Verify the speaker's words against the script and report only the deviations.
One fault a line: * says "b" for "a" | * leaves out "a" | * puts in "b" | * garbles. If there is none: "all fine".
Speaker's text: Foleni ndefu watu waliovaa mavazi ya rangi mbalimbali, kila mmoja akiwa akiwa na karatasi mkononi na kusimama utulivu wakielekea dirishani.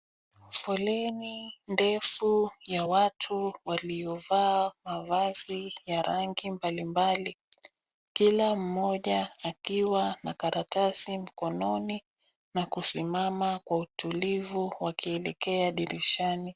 * puts in "ya"
* leaves out "akiwa"
* puts in "kwa"